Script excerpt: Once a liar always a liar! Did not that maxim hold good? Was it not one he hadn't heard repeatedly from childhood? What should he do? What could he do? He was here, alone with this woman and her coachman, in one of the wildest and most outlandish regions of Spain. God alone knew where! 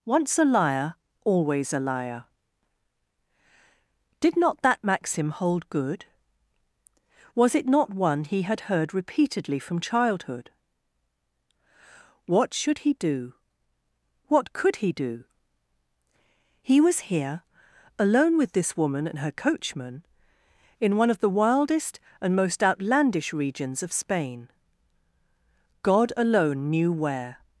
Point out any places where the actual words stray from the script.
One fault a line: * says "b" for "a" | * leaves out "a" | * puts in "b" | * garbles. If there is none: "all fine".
* says "had" for "hadn't"